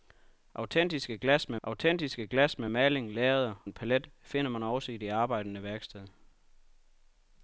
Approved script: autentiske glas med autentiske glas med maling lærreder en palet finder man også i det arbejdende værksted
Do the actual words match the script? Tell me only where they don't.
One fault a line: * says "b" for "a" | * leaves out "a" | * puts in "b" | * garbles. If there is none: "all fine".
all fine